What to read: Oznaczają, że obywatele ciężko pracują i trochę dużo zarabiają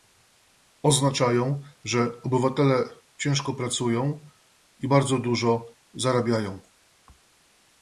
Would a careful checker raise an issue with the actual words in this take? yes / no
yes